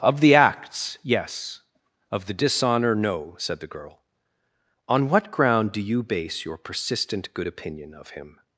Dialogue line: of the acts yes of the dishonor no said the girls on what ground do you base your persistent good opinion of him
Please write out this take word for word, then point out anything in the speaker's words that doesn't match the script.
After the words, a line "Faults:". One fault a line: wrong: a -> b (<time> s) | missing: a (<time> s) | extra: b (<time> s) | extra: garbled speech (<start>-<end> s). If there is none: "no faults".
of the acts yes of the dishonor no said the girl on what ground do you base your persistent good opinion of him
Faults:
wrong: girls -> girl (3.7 s)